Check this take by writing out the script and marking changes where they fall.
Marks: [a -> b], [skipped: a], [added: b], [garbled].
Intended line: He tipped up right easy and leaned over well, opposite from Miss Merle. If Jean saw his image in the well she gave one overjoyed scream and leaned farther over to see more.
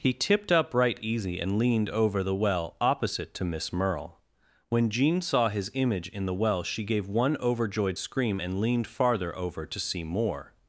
He tipped up right easy and leaned over [added: the] well, opposite [from -> to] Miss Merle. [If -> When] Jean saw his image in the well she gave one overjoyed scream and leaned farther over to see more.